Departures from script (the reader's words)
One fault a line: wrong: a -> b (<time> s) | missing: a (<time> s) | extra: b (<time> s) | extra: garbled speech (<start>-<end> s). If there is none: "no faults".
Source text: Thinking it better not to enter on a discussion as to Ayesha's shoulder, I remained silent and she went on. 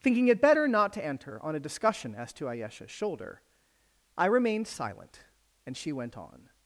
no faults